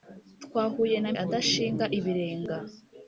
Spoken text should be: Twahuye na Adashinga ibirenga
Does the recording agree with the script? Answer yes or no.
yes